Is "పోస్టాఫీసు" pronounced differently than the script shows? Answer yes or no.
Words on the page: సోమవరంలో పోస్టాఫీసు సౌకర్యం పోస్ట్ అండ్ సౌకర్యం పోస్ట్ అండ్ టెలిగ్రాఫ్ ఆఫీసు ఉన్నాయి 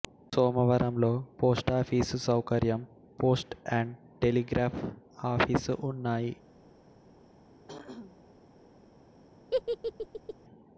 no